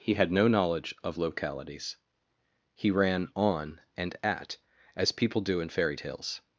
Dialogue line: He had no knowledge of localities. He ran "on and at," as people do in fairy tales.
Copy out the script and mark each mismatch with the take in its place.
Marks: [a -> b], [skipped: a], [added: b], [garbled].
He had no knowledge of localities. He ran "on and at," as people do in fairy tales.